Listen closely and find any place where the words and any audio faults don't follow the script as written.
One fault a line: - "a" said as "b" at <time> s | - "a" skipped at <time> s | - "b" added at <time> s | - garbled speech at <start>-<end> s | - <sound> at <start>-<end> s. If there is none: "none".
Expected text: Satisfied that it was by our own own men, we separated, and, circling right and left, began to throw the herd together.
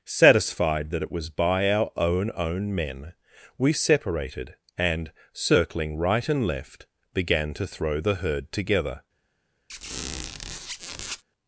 - squeak at 9.7-11.2 s